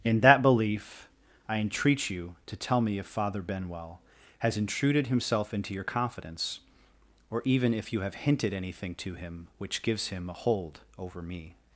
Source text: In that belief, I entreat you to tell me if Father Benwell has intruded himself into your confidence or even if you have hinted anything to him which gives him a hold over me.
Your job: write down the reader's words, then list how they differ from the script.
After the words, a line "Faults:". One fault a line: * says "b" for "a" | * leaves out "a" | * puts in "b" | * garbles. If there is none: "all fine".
In that belief, I entreat you to tell me if Father Benwell has intruded himself into your confidence or even if you have hinted anything to him which gives him a hold over me.
Faults:
all fine